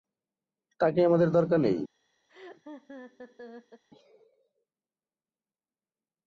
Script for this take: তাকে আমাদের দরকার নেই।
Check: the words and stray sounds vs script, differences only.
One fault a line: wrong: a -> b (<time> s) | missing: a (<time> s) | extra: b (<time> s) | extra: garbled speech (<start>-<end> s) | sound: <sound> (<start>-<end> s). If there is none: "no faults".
sound: laugh (2.3-3.8 s)